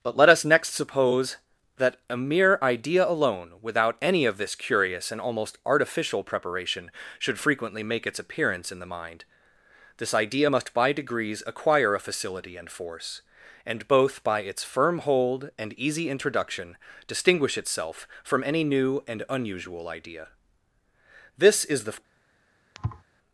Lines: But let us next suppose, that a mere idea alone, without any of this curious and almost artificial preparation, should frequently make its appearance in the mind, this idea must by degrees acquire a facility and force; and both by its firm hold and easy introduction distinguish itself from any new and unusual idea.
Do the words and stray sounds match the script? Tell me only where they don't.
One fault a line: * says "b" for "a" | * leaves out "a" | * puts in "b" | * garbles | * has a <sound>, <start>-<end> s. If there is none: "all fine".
* puts in "This is the"
* has a thud, 22.7-23.0 s